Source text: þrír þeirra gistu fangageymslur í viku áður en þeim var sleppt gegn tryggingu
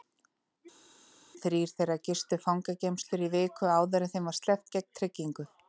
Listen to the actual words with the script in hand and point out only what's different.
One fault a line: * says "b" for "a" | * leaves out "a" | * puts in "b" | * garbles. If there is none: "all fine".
all fine